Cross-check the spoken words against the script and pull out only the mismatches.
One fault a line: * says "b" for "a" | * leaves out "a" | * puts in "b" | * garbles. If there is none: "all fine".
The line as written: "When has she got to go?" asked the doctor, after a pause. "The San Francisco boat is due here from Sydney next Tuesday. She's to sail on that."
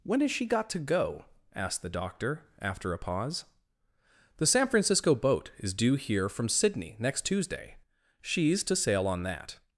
all fine